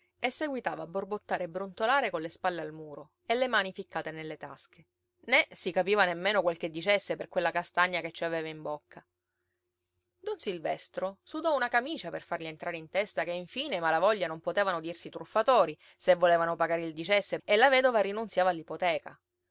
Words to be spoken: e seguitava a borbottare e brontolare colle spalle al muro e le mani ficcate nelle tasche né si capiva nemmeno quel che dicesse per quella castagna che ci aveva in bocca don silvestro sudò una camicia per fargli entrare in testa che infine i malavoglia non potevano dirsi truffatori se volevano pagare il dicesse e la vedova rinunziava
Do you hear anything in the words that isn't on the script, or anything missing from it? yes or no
no